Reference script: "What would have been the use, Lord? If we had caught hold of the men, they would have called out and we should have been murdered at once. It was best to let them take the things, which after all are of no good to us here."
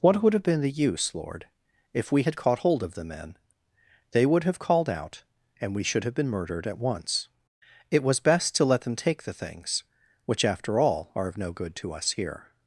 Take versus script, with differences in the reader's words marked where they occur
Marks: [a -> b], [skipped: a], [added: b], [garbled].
"What would have been the use, Lord? If we had caught hold of the men, they would have called out and we should have been murdered at once. It was best to let them take the things, which after all are of no good to us here."